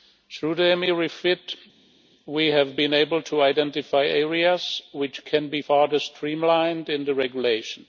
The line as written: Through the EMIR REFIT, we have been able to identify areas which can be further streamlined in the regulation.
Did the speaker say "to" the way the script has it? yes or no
yes